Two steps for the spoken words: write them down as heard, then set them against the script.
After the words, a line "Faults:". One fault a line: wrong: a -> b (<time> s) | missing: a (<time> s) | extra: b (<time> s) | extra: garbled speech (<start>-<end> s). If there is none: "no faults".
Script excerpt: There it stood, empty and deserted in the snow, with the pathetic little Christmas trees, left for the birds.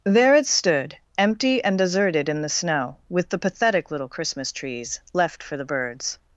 There it stood, empty and deserted in the snow, with the pathetic little Christmas trees, left for the birds.
Faults:
no faults